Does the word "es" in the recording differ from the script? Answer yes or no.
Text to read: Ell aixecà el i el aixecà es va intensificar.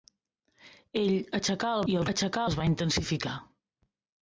no